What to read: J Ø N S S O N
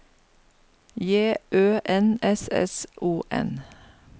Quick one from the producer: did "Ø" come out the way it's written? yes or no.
yes